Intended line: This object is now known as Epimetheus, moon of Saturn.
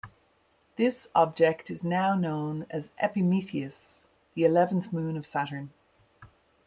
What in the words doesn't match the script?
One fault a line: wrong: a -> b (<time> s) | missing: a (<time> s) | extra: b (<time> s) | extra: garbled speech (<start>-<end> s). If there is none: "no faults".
extra: the eleventh (4.3 s)